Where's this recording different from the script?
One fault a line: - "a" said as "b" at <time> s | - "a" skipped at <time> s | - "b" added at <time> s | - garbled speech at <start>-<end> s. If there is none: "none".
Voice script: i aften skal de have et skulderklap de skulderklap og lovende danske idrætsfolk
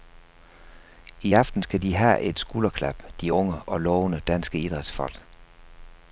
- "skulderklap" said as "unge" at 3.3 s